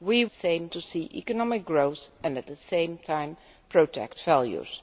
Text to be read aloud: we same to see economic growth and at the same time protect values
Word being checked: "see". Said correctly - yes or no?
yes